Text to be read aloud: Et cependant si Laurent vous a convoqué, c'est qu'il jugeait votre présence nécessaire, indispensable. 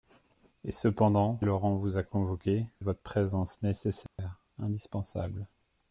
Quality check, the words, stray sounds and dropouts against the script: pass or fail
fail